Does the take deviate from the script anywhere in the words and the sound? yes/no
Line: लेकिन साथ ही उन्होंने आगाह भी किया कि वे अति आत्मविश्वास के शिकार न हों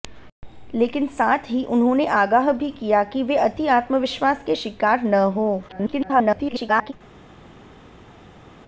yes